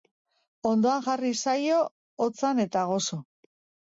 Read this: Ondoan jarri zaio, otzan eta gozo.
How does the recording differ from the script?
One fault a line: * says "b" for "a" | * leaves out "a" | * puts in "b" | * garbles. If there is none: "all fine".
all fine